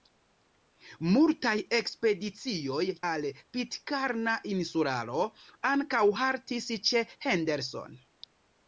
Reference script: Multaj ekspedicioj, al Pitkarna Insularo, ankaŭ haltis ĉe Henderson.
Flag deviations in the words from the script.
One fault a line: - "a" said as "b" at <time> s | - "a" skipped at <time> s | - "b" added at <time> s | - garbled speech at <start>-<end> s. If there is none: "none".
none